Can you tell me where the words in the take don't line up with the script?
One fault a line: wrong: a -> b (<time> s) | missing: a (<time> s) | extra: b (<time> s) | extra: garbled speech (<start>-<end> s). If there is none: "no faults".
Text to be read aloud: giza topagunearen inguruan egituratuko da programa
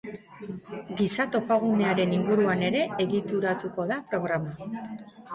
extra: ere (2.7 s)